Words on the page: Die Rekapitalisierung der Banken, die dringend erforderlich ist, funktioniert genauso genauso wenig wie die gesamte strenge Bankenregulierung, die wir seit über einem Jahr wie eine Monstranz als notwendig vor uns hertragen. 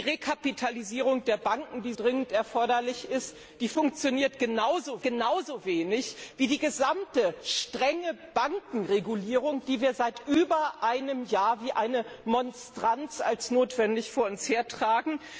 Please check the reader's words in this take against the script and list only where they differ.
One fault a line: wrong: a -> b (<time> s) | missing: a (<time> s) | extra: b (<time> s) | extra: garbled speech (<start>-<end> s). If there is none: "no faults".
no faults